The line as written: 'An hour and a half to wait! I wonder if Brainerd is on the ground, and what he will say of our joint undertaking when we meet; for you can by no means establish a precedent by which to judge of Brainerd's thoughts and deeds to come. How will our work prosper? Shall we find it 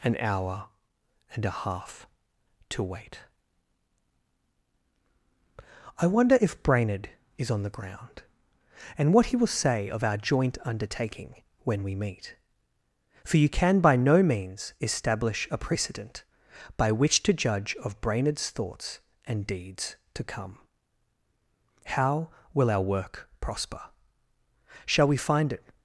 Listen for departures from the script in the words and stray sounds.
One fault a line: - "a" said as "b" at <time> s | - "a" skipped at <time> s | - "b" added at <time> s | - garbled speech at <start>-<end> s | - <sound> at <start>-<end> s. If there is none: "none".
none